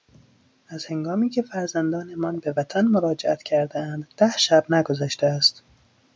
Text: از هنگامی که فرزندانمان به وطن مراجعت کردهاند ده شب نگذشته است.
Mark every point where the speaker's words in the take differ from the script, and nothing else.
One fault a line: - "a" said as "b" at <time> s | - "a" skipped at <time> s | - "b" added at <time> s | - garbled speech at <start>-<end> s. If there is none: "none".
none